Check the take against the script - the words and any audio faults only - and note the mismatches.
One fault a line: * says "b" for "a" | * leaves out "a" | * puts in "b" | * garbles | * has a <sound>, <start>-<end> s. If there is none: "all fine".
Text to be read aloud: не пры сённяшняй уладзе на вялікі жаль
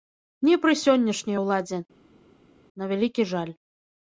all fine